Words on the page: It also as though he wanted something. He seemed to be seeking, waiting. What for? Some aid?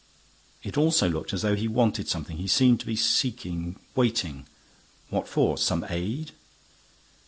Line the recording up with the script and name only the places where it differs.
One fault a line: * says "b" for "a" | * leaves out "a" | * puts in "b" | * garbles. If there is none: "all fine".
* puts in "looked"